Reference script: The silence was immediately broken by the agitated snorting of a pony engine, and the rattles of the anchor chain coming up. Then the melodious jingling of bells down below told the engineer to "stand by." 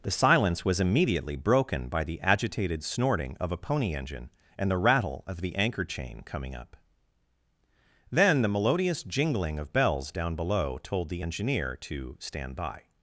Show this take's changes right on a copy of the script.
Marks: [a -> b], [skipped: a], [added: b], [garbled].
The silence was immediately broken by the agitated snorting of a pony engine, and the [rattles -> rattle] of the anchor chain coming up. Then the melodious jingling of bells down below told the engineer to "stand by."